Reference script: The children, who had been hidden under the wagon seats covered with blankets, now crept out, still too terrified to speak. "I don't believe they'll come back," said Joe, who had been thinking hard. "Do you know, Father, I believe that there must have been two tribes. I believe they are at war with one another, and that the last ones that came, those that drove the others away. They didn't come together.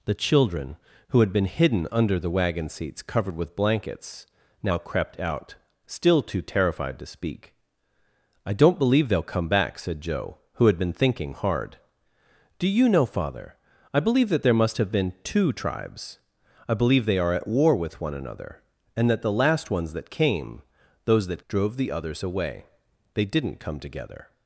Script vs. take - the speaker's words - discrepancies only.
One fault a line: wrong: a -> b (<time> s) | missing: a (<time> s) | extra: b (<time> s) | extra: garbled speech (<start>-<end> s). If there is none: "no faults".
no faults